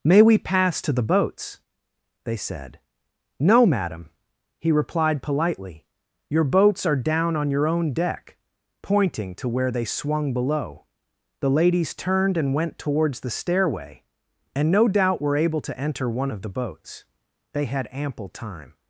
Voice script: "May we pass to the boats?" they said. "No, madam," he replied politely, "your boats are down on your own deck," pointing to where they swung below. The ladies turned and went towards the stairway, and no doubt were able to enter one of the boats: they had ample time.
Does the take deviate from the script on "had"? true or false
false